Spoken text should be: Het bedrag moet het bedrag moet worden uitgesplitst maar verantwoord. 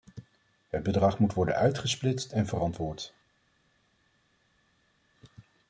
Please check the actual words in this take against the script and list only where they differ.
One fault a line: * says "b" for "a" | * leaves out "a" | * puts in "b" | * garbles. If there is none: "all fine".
* leaves out "het bedrag moet"
* says "en" for "maar"